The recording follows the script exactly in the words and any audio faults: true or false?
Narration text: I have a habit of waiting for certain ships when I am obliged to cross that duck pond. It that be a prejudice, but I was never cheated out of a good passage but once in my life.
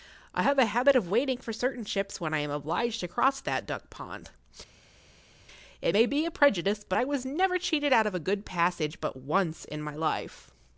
false